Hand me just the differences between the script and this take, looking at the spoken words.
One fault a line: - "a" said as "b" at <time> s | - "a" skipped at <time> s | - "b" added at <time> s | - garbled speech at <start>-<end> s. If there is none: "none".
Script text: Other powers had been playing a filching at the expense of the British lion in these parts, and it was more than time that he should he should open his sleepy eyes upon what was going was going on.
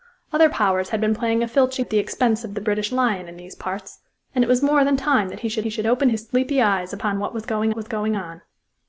none